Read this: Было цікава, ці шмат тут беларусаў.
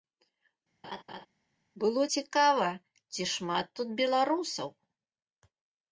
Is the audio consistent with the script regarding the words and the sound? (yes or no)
no